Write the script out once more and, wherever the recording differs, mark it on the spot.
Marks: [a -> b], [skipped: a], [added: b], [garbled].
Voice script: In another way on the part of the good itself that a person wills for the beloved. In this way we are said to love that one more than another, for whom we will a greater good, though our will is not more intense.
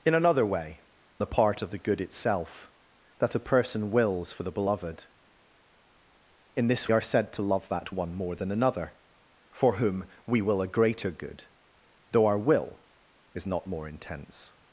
In another way [skipped: on] the part of the good itself that a person wills for the beloved. In this [skipped: way we] are said to love that one more than another, for whom we will a greater good, though our will is not more intense.